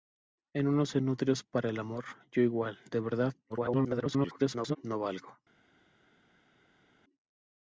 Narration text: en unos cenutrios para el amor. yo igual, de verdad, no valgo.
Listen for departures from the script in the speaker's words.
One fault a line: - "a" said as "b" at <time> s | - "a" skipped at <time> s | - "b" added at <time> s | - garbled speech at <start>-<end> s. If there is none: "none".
- garbled speech at 3.5-4.8 s